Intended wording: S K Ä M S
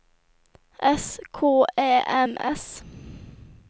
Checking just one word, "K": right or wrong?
right